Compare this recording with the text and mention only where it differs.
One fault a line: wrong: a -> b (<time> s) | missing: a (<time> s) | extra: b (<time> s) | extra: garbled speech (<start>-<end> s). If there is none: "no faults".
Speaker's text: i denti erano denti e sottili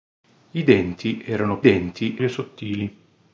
no faults